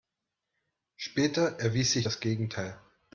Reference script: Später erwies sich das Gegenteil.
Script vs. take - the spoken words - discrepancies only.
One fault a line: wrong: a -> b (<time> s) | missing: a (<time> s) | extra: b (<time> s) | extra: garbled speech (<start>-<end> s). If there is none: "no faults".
no faults